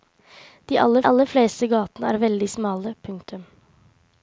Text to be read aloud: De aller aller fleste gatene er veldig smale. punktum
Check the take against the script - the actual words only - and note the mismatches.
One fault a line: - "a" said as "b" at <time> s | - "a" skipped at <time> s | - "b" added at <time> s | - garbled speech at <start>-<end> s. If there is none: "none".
none